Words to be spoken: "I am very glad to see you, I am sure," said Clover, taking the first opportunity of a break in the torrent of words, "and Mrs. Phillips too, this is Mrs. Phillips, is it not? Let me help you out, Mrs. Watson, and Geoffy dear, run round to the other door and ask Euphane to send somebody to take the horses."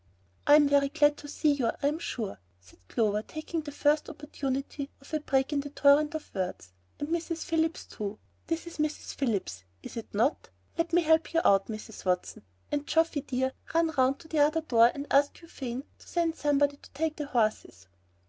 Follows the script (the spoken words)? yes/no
yes